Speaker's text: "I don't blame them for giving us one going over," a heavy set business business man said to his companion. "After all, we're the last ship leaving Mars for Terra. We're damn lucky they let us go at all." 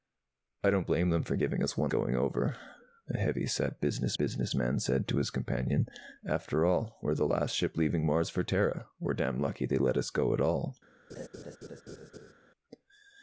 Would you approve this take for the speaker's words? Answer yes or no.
yes